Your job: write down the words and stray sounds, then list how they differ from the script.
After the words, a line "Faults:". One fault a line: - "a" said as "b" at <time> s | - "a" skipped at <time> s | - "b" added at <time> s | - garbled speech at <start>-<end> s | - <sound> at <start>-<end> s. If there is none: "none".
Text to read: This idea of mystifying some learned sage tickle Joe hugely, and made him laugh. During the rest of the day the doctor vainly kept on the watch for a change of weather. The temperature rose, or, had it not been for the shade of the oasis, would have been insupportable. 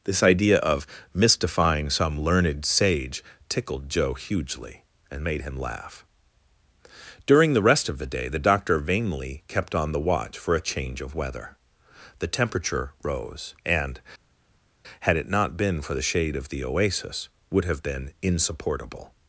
This idea of mystifying some learned sage tickled Joe hugely, and made him laugh. During the rest of the day the doctor vainly kept on the watch for a change of weather. The temperature rose, and, had it not been for the shade of the oasis, would have been insupportable.
Faults:
- "tickle" said as "tickled" at 3.5 s
- "or" said as "and" at 13.6 s